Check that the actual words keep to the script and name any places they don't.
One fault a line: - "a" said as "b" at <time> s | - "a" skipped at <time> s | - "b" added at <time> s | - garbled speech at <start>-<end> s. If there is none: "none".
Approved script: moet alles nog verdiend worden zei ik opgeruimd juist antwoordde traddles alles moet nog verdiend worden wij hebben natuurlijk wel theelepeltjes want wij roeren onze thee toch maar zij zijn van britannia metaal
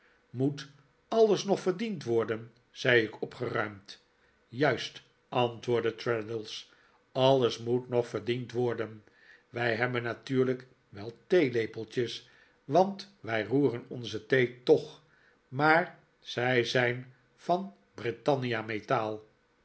none